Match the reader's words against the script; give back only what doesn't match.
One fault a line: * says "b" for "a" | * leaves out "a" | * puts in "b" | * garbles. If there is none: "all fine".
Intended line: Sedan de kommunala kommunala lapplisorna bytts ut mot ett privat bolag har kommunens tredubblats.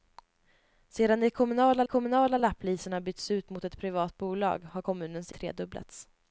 all fine